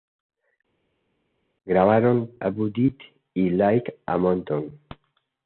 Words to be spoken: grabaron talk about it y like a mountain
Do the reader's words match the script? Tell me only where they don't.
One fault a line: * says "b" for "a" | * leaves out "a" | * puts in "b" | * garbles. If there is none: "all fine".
* leaves out "talk"